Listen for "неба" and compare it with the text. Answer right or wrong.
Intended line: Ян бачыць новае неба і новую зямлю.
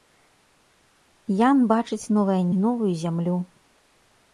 wrong